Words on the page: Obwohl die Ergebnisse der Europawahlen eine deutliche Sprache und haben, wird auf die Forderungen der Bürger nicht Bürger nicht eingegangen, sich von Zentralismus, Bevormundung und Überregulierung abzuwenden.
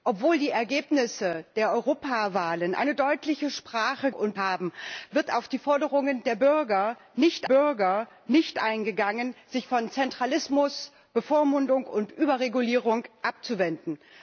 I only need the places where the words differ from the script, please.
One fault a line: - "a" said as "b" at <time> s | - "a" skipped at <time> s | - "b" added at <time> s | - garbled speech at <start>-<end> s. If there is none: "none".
none